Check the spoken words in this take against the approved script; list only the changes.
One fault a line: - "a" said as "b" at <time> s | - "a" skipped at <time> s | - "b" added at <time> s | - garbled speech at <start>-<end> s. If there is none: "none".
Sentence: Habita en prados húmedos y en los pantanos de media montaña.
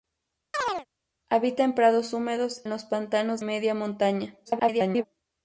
- "y" skipped at 2.6 s
- "de" skipped at 3.4 s
- garbled speech at 4.5-5.0 s